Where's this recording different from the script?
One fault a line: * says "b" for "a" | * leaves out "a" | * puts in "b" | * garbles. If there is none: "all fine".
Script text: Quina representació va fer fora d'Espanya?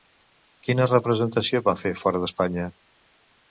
all fine